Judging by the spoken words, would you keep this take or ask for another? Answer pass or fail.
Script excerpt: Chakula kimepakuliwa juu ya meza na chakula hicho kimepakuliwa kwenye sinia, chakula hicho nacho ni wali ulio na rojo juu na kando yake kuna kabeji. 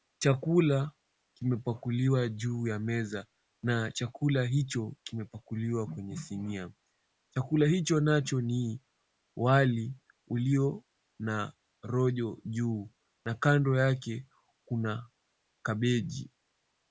pass